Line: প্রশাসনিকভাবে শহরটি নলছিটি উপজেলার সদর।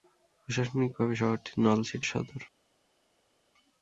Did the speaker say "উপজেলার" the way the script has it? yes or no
no